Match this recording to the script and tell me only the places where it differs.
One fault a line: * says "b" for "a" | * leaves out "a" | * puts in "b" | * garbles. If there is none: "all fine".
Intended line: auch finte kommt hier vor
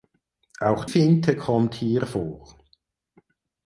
all fine